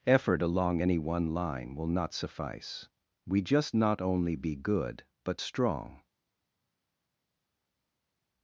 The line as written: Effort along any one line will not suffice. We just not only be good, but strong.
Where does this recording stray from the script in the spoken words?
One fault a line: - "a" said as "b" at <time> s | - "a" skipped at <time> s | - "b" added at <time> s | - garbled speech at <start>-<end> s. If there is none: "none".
none